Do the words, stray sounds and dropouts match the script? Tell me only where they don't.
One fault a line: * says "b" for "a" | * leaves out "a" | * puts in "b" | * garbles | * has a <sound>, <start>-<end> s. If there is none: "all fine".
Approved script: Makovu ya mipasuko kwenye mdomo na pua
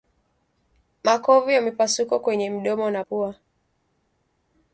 all fine